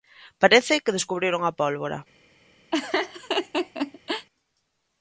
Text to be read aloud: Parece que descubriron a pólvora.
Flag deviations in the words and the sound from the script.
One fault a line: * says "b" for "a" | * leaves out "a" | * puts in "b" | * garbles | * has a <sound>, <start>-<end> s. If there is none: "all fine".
* has a laugh, 2.7-4.3 s